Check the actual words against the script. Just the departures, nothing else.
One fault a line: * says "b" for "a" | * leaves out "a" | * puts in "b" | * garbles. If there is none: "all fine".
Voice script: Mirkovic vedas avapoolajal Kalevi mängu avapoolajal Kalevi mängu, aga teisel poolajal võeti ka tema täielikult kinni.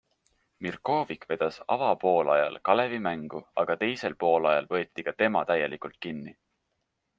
* leaves out "avapoolajal Kalevi mängu"